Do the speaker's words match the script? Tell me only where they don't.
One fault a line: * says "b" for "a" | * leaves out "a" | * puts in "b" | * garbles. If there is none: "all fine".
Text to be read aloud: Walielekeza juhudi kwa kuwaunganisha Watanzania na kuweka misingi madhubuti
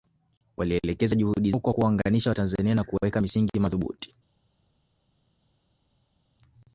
all fine